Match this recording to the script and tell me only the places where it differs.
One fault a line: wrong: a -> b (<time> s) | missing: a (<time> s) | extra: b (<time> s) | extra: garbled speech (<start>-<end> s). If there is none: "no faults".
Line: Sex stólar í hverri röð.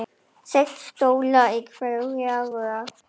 no faults